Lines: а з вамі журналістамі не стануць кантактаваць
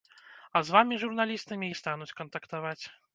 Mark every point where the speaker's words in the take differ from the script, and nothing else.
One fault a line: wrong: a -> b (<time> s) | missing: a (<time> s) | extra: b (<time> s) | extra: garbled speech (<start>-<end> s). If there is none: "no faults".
no faults